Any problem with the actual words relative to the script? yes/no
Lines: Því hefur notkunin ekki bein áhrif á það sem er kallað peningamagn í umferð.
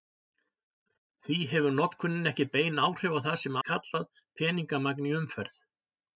no